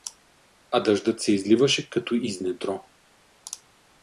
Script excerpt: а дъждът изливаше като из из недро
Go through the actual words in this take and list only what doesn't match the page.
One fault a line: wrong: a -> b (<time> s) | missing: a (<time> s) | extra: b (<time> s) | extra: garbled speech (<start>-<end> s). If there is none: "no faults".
extra: се (1.2 s)
missing: из (2.4 s)